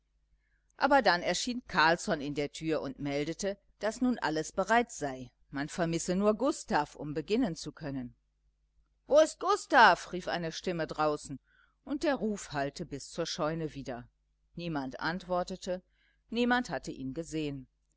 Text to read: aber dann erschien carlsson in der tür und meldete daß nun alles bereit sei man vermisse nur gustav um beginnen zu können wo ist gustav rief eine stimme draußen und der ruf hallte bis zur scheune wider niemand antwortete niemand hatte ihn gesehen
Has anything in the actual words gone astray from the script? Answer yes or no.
no